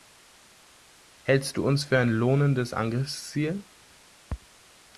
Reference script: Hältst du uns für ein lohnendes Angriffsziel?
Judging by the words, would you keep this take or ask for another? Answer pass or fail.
pass